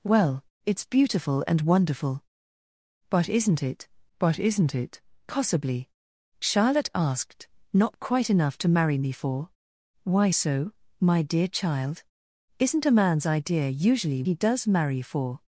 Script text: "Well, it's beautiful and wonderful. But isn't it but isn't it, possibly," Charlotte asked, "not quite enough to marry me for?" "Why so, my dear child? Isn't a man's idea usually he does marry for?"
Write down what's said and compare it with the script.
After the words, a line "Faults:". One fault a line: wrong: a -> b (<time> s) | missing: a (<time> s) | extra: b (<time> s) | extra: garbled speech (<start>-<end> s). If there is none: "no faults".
"Well, it's beautiful and wonderful. But isn't it but isn't it, possibly," Charlotte asked, "not quite enough to marry me for?" "Why so, my dear child? Isn't a man's idea usually he does marry for?"
Faults:
no faults